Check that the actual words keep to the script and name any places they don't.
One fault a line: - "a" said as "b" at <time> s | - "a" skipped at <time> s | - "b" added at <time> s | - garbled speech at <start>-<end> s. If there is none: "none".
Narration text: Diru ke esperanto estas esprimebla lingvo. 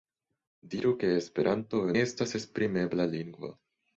none